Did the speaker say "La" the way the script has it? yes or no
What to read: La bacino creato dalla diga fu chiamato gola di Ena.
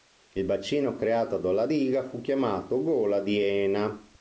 no